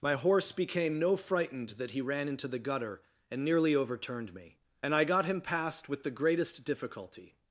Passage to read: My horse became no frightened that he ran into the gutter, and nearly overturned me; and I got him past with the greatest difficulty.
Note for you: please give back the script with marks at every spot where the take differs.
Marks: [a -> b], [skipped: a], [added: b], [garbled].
My horse became no frightened that he ran into the gutter, and nearly overturned me; and I got him past with the greatest difficulty.